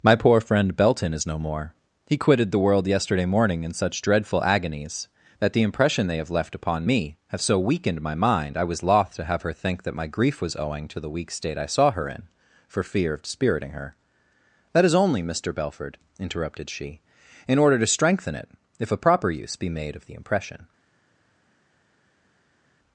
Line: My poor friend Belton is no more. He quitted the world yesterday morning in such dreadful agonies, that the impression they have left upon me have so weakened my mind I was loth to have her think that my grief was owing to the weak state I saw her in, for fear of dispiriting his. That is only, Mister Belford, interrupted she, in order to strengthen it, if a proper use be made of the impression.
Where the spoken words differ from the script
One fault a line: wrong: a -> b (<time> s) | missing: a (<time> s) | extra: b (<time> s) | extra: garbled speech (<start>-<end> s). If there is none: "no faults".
wrong: his -> her (13.7 s)